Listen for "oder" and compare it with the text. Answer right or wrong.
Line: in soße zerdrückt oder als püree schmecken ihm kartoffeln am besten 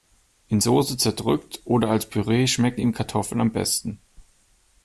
right